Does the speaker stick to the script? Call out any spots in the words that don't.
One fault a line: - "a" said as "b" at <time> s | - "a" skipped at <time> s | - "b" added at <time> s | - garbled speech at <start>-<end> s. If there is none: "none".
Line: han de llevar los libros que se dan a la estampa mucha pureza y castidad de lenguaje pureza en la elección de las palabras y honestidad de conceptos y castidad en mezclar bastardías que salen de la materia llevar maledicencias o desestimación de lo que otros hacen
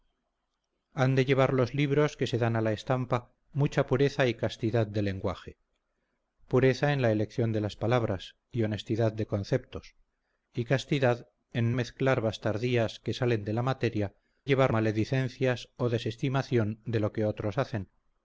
none